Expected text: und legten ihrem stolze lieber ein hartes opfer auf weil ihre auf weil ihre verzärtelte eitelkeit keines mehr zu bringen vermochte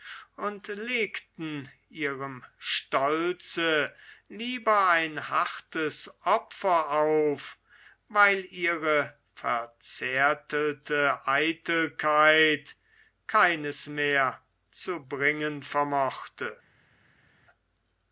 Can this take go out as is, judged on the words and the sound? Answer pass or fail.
fail